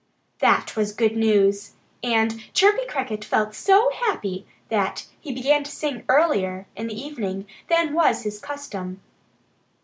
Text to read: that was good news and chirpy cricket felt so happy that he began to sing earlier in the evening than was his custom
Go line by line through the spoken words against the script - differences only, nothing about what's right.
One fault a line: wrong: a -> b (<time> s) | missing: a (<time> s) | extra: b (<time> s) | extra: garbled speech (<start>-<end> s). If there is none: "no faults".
no faults